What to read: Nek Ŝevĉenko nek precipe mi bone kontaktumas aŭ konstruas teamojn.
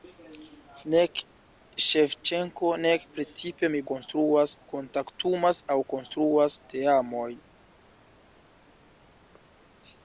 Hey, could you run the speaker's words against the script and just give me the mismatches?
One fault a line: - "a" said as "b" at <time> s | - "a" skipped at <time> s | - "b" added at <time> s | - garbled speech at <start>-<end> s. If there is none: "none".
- "bone" said as "konstruas" at 3.9 s